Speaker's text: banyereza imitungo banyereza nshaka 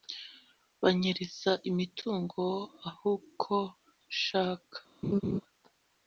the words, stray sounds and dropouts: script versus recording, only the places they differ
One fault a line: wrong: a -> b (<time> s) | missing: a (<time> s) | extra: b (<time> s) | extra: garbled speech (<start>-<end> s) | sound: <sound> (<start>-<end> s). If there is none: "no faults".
wrong: banyereza -> ahuko (2.9 s)
sound: laugh (5.0-5.4 s)